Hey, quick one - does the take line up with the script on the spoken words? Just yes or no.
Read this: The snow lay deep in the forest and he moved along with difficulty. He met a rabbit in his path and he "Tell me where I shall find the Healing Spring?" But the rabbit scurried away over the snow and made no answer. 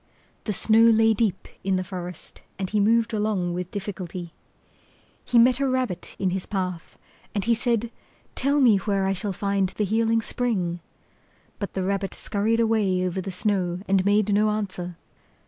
no